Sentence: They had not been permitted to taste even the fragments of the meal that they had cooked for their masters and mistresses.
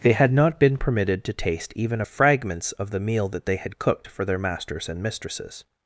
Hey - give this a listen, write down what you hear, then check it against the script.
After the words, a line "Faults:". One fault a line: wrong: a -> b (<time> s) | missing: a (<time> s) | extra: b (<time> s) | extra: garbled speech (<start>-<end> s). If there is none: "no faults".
They had not been permitted to taste even a fragments of the meal that they had cooked for their masters and mistresses.
Faults:
wrong: the -> a (2.0 s)